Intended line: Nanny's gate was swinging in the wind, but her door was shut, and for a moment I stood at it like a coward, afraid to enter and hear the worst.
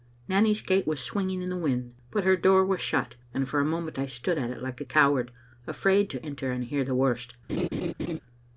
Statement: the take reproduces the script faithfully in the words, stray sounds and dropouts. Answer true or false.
false